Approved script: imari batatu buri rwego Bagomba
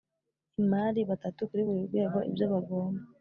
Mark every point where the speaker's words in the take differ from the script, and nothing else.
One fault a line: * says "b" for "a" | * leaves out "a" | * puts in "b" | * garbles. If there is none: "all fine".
* puts in "kuri"
* puts in "Ibyo"